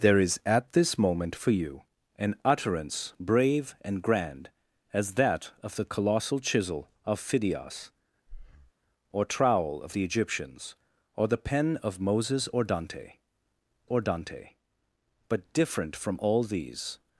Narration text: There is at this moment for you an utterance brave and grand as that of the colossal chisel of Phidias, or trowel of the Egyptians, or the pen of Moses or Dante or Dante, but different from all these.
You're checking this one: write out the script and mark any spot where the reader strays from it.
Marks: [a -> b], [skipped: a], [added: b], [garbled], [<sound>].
There is at this moment for you an utterance brave and grand as that of the colossal chisel of Phidias, [breath] or trowel of the Egyptians, or the pen of Moses or Dante or Dante, but different from all these.